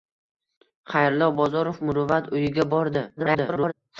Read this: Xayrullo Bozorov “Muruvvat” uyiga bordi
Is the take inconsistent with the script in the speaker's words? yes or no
yes